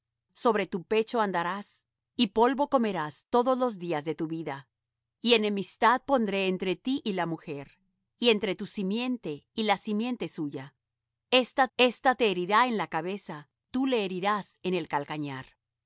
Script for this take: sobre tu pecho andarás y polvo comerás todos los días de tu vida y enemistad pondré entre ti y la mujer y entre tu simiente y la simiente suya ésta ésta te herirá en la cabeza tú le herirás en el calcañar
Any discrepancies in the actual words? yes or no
no